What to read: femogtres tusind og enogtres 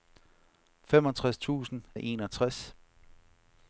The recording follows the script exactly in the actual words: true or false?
true